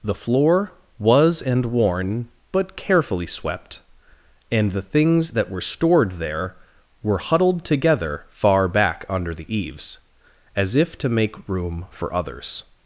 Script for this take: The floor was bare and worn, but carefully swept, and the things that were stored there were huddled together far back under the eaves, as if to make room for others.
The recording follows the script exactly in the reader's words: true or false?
false